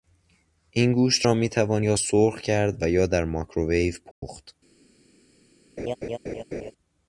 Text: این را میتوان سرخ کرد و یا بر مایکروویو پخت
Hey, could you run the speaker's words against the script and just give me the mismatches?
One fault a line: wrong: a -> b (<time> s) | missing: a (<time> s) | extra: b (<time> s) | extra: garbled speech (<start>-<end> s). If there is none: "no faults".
extra: گوشت (0.9 s)
extra: یا (1.8 s)
wrong: بر -> در (3.1 s)